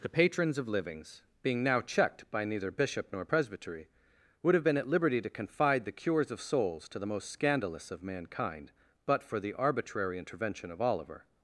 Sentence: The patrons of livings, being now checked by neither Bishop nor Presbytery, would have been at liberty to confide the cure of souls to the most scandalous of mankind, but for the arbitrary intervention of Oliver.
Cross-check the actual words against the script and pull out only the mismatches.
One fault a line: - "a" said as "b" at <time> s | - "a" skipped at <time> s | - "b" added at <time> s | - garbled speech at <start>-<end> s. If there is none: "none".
- "cure" said as "cures" at 5.9 s